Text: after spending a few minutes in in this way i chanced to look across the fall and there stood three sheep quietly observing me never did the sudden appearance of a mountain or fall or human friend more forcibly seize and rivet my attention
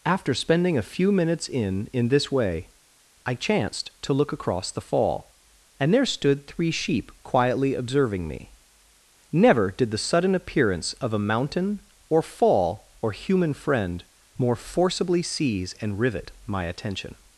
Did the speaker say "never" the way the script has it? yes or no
yes